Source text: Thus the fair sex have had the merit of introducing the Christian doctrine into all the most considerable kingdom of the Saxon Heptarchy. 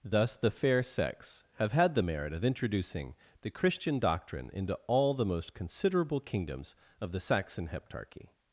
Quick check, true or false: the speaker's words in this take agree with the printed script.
false